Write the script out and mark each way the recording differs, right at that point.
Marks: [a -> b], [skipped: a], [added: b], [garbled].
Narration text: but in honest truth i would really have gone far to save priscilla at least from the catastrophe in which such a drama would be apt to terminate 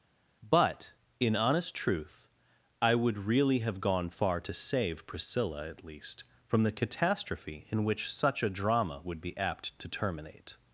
but in honest truth i would really have gone far to save priscilla at least from the catastrophe in which such a drama would be apt to terminate